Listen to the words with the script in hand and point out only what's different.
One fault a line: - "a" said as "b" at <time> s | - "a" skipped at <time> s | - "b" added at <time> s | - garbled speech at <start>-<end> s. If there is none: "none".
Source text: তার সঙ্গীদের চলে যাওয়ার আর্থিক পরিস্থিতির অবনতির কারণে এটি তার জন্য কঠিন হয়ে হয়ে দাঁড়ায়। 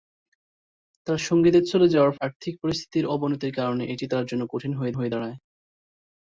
none